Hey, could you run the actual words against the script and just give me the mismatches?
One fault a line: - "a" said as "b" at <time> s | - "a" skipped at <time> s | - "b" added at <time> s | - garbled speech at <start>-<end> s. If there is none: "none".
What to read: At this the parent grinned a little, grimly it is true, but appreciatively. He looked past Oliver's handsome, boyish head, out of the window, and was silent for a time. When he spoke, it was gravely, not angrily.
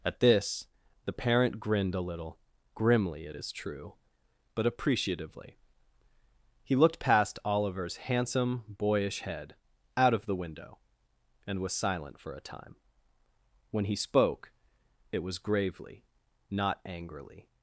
none